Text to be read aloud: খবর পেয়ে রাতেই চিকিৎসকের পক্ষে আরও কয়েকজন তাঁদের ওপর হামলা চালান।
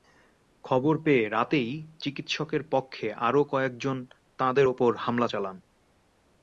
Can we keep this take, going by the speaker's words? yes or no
yes